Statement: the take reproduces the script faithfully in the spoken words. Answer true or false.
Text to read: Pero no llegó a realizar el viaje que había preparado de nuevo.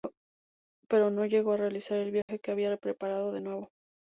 true